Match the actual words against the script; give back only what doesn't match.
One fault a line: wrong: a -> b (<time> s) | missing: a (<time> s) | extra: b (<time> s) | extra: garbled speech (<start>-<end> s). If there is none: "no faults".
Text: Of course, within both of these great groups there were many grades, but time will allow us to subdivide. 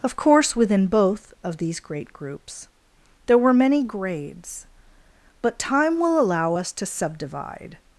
no faults